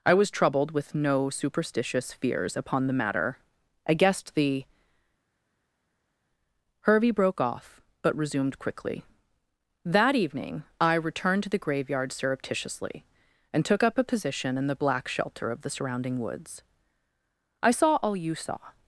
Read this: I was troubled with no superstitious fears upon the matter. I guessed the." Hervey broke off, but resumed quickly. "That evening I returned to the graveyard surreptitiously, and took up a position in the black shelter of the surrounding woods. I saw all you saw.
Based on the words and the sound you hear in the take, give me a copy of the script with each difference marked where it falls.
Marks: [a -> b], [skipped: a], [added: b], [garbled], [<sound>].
I was troubled with no superstitious fears upon the matter. I guessed the." Hervey broke off, but resumed quickly. "That evening I returned to the graveyard surreptitiously, and took up a position in the black shelter of the surrounding woods. I saw all you saw.